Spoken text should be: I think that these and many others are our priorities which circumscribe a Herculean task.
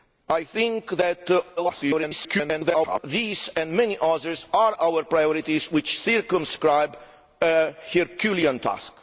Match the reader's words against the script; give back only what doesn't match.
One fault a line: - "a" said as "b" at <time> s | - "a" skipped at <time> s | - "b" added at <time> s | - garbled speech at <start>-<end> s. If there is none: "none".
- garbled speech at 1.6-3.0 s